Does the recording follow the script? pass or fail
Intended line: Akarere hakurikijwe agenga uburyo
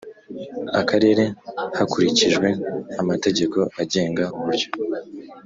fail